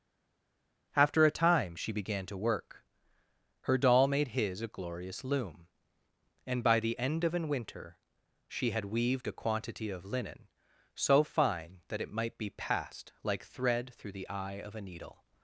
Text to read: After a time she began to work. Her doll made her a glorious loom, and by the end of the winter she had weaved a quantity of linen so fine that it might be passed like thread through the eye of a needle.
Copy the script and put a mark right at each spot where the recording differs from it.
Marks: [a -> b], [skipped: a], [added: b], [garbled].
After a time she began to work. Her doll made [her -> his] a glorious loom, and by the end of [the -> an] winter she had weaved a quantity of linen so fine that it might be passed like thread through the eye of a needle.